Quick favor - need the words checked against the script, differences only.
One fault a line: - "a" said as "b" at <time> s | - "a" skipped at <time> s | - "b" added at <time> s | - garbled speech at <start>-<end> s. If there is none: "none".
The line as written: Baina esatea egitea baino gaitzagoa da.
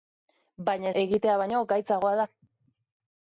- "esatea" skipped at 0.9 s